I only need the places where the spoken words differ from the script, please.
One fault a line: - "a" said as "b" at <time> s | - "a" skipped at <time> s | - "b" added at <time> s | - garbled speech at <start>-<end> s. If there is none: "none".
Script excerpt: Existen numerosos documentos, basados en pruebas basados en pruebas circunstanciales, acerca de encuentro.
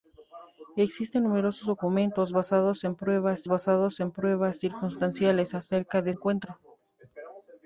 none